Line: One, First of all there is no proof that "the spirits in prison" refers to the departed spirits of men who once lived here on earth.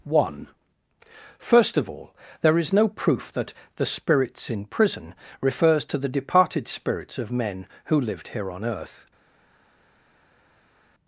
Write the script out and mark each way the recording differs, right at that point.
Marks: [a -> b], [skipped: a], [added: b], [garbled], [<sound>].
One, First of all there is no proof that "the spirits in prison" refers to the departed spirits of men who [skipped: once] lived here on earth.